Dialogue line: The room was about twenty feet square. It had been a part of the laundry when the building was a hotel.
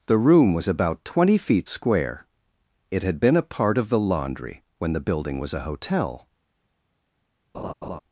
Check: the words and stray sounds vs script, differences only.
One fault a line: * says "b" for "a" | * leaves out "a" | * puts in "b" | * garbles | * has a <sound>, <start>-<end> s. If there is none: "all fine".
* has a laugh, 7.5-8.0 s